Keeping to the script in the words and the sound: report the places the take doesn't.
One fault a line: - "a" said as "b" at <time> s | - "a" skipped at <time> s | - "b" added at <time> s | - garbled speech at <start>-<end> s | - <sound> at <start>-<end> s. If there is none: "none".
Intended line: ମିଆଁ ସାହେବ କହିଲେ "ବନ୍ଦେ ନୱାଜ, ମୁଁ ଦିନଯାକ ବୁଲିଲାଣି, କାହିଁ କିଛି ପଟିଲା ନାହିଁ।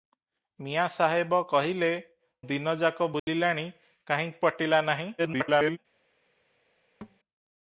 - "ବନ୍ଦେ ନୱାଜ ମୁଁ" skipped at 1.9 s
- dropout at 3.2-3.3 s
- "କିଛି" skipped at 4.3 s
- garbled speech at 5.2-5.8 s
- thud at 7.0-7.2 s